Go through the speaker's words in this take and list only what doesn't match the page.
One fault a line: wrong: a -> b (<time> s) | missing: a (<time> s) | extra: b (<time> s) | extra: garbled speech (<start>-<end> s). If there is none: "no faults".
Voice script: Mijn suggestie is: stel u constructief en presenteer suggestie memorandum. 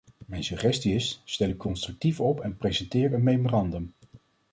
extra: op (2.2 s)
wrong: suggestie -> een (3.1 s)